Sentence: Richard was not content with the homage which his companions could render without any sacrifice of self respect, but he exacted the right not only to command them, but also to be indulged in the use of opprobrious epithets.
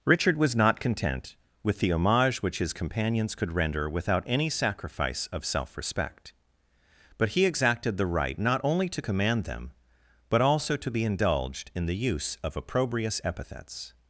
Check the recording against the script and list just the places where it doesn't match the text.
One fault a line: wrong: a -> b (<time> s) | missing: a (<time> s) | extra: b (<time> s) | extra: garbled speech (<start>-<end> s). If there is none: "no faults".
no faults